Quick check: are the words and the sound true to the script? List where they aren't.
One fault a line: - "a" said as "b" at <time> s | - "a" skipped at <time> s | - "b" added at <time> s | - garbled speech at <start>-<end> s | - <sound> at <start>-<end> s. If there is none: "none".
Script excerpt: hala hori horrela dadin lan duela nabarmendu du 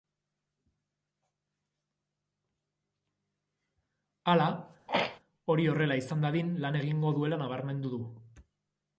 - throat clearing at 4.9-5.2 s
- "izan" added at 6.0 s
- "egingo" added at 6.8 s